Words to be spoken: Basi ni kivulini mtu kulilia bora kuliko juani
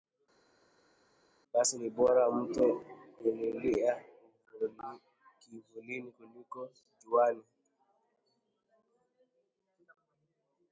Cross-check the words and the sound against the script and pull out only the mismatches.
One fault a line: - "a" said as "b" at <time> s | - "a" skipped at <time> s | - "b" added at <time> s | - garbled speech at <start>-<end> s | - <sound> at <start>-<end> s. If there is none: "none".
- "kivulini" said as "bora" at 1.9 s
- "bora" said as "kivulini" at 5.4 s